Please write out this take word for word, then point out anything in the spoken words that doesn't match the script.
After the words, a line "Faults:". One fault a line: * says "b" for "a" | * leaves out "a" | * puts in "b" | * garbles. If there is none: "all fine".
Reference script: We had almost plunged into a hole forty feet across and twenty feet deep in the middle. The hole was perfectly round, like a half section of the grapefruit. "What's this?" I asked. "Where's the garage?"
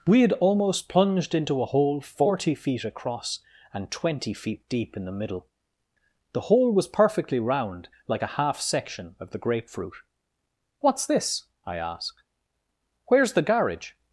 We had almost plunged into a hole forty feet across and twenty feet deep in the middle. The hole was perfectly round, like a half section of the grapefruit. "What's this?" I asked. "Where's the garage?"
Faults:
all fine